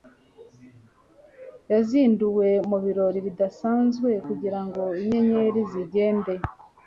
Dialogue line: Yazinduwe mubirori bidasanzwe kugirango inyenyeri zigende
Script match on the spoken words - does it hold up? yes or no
yes